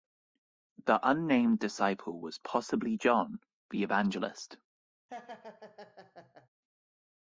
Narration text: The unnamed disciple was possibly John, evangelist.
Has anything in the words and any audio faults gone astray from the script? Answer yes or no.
yes